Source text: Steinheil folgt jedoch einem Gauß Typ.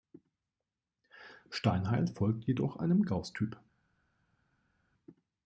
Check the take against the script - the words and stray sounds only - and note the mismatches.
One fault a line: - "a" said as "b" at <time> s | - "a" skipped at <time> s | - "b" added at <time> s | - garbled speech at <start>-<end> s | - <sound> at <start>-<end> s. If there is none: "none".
none